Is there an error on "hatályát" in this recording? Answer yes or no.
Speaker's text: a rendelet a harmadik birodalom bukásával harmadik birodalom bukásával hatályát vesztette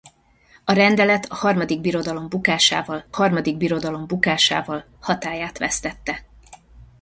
no